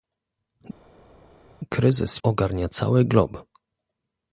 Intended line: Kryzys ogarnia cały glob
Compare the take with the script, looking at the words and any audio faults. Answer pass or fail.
pass